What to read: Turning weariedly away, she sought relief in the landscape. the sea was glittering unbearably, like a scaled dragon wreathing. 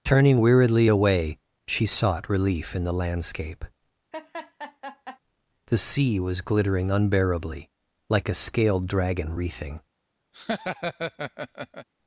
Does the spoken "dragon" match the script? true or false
true